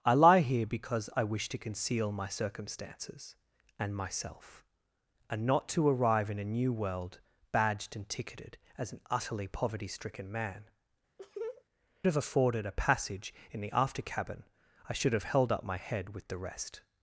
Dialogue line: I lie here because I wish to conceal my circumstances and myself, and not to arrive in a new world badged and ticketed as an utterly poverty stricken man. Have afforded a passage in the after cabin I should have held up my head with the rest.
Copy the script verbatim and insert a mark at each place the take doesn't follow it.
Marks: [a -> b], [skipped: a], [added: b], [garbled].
I lie here because I wish to conceal my circumstances and myself, and not to arrive in a new world badged and ticketed as an utterly poverty stricken man. Have afforded a passage in the after cabin I should have held up my head with the rest.